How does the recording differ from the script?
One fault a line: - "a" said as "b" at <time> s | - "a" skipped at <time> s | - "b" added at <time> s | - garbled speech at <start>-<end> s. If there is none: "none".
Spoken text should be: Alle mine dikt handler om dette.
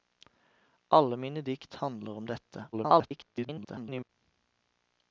- garbled speech at 2.7-4.1 s